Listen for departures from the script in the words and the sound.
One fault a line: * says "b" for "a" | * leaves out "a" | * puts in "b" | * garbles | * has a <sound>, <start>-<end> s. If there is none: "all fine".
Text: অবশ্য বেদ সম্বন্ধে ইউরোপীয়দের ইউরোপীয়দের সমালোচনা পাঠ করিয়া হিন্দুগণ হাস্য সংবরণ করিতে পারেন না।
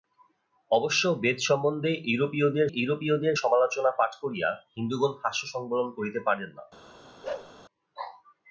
* has a bark, 7.2-7.5 s